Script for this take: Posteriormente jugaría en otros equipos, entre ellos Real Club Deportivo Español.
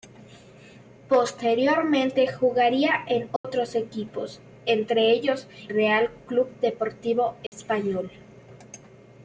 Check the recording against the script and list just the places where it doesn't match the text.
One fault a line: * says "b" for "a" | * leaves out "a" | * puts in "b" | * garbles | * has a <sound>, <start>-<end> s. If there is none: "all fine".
* has a dropout, 3.4-3.4 s
* has a dropout, 7.5-7.5 s